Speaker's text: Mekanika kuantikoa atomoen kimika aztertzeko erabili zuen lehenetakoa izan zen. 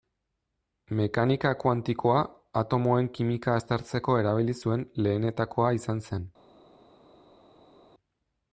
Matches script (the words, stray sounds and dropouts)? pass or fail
pass